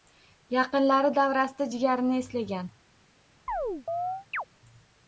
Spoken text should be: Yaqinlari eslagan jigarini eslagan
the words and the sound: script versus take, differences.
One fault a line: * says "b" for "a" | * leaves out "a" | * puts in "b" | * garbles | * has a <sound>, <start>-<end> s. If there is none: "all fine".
* says "davrasida" for "eslagan"
* has a chirp, 3.5-4.4 s